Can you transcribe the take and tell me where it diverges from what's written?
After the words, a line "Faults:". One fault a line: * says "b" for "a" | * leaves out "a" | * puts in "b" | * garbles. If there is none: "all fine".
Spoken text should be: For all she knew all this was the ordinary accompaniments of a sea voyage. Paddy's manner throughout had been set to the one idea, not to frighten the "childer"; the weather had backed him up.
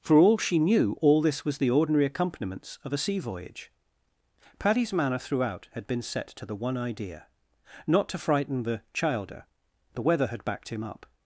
For all she knew all this was the ordinary accompaniments of a sea voyage. Paddy's manner throughout had been set to the one idea, not to frighten the "childer"; the weather had backed him up.
Faults:
all fine